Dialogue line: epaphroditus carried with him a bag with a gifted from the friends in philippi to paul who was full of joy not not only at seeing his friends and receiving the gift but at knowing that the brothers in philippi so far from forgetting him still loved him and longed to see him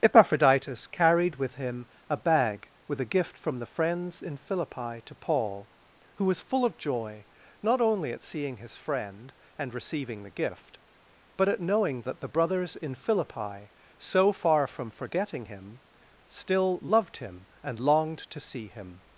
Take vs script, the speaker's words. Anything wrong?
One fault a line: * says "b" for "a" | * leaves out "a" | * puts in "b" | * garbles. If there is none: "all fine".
* says "gift" for "gifted"
* leaves out "not"
* says "friend" for "friends"